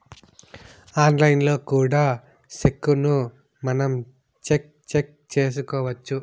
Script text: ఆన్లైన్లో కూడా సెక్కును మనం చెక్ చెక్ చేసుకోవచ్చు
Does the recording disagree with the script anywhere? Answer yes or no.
no